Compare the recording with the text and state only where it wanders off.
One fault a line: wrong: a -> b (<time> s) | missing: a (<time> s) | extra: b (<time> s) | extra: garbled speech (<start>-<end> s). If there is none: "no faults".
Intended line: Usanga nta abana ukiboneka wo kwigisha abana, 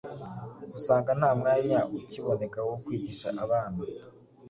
wrong: abana -> mwanya (1.4 s)